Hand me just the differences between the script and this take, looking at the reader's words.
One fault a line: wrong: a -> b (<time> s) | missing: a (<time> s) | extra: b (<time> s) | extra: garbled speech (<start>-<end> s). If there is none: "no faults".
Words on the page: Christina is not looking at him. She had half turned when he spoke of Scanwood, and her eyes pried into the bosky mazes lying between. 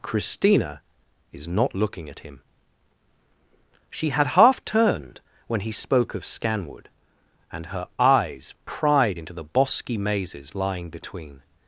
no faults